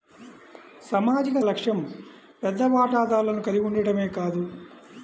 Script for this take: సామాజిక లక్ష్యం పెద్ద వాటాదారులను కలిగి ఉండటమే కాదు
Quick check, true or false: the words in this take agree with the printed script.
true